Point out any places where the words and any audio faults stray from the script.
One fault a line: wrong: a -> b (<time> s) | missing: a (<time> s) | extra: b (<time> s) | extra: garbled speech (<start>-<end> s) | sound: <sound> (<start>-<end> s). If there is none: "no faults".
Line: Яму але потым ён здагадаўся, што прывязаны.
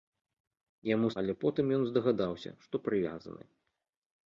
no faults